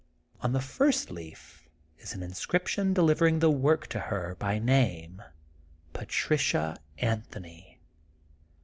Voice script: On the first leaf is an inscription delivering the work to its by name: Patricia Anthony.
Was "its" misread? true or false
true